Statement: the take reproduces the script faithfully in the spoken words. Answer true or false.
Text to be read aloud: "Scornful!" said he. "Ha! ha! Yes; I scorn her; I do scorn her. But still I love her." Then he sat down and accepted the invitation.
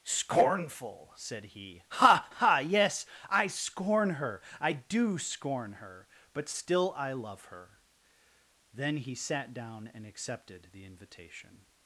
true